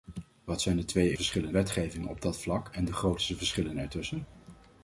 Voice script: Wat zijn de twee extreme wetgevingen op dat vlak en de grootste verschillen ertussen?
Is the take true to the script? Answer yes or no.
no